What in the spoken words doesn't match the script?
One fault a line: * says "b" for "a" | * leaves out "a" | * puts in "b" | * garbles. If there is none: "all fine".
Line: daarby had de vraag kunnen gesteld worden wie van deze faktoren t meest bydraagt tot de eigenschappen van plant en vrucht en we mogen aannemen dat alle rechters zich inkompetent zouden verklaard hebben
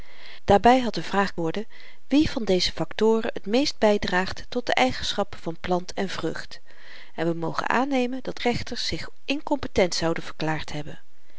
* leaves out "kunnen gesteld"
* leaves out "alle"